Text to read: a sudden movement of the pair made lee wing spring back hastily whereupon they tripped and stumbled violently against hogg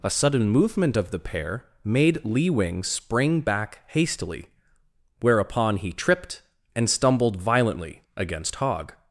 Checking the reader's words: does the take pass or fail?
fail